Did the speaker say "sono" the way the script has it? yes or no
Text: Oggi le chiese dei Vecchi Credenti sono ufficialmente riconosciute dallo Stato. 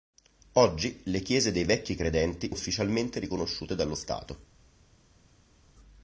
no